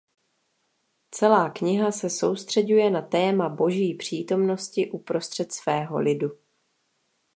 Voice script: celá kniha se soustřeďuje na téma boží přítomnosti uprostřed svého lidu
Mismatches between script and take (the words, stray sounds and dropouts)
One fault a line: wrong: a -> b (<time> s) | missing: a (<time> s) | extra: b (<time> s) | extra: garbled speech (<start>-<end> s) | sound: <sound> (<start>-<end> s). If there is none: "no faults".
no faults